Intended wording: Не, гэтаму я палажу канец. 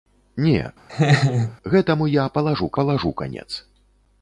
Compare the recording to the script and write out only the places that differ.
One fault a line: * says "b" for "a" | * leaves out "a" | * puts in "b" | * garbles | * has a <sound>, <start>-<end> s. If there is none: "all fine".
* has a laugh, 0.9-1.6 s
* puts in "палажу"